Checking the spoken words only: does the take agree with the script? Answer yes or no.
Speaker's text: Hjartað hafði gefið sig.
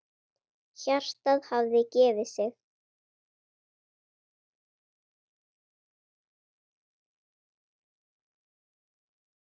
yes